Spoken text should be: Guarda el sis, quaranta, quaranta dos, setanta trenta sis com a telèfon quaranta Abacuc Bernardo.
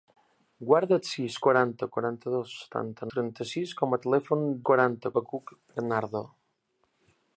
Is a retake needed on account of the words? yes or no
no